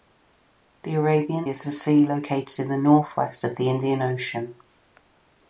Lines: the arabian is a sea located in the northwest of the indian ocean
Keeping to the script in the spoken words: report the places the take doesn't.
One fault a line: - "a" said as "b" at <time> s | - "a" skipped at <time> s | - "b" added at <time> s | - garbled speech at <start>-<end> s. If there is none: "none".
none